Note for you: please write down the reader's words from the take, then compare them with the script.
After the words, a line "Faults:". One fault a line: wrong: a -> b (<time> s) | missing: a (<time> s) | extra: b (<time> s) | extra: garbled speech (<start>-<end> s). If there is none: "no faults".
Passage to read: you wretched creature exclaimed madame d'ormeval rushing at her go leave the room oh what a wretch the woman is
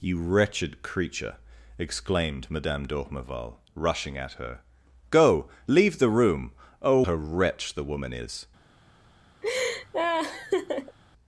you wretched creature exclaimed madame d'ormeval rushing at her go leave the room oh a wretch the woman is
Faults:
missing: what (7.0 s)